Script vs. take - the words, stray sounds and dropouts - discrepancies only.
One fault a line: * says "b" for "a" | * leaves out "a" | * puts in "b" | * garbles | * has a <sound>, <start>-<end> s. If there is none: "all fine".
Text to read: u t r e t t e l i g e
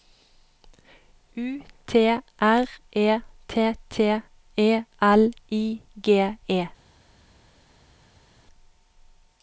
all fine